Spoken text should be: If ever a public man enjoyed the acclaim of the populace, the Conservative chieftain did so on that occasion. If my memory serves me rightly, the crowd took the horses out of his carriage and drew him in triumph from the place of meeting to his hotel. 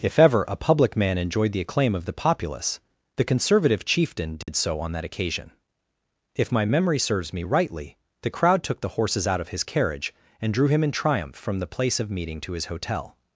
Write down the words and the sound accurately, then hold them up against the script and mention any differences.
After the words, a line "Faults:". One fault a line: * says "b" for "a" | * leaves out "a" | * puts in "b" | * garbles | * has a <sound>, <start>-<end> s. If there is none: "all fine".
If ever a public man enjoyed the acclaim of the populace, the Conservative chieftain did so on that occasion. If my memory serves me rightly, the crowd took the horses out of his carriage and drew him in triumph from the place of meeting to his hotel.
Faults:
* has a dropout, 4.4-4.5 s